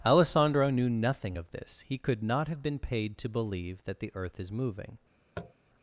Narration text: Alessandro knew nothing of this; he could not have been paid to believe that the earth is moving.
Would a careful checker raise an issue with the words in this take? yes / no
no